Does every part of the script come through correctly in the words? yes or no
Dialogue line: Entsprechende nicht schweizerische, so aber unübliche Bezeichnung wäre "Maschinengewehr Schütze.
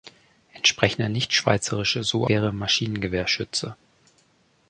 no